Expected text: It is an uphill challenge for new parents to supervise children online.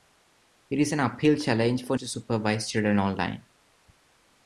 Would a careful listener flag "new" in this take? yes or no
yes